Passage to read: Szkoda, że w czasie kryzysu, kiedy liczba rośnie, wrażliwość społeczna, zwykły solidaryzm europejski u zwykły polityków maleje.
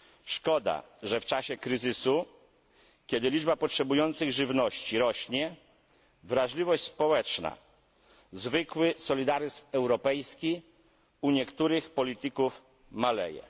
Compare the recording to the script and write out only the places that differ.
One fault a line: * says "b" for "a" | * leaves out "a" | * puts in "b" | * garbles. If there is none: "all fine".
* puts in "potrzebujących żywności"
* says "niektórych" for "zwykły"